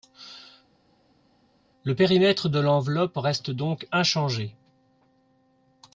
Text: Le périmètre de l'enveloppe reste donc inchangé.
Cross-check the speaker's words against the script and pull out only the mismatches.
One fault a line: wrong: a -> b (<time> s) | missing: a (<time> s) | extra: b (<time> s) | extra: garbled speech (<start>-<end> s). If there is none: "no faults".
no faults